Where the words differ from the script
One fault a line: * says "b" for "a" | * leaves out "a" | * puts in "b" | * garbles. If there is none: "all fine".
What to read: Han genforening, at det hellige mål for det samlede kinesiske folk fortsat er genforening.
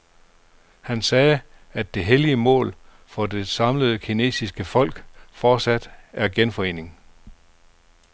* says "sagde" for "genforening"